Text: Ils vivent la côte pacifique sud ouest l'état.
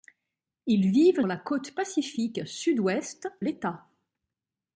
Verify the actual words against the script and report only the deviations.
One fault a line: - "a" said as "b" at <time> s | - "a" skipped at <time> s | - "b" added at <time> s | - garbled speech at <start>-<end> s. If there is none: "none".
none